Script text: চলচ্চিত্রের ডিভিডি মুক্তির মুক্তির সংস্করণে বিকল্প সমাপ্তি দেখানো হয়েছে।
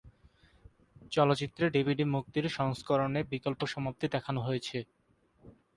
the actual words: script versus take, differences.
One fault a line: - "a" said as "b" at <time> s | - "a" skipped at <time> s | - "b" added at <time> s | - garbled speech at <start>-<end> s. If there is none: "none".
- "মুক্তির" skipped at 2.4 s